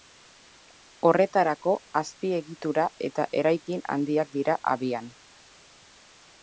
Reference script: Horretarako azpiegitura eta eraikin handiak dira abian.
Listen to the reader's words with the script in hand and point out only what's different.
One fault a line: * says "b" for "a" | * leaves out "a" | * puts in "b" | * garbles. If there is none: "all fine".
all fine